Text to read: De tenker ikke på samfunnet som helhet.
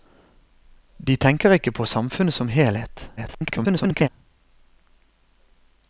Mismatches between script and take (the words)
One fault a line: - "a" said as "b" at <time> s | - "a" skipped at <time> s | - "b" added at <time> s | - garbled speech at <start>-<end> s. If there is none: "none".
- garbled speech at 3.2-4.1 s